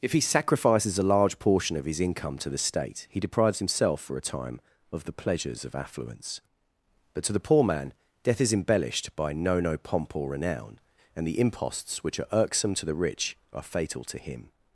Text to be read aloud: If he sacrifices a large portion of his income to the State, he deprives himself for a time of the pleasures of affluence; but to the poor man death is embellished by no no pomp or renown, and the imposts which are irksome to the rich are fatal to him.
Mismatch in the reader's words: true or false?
false